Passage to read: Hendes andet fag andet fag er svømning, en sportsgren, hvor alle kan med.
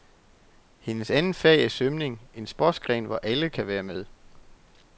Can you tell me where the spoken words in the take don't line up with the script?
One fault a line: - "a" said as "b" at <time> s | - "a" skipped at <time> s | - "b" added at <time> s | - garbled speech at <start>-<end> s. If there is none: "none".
- "andet fag" skipped at 1.6 s
- "være" added at 3.7 s